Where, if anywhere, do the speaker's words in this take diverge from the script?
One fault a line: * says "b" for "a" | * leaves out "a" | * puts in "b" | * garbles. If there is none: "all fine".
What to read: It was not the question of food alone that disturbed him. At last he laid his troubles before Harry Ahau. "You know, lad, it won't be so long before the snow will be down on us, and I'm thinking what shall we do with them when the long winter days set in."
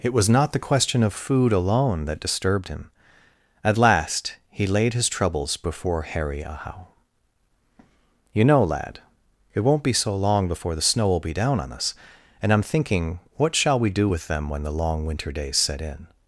all fine